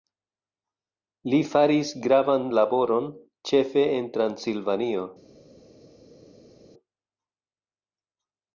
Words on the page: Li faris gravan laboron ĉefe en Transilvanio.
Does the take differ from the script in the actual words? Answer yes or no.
no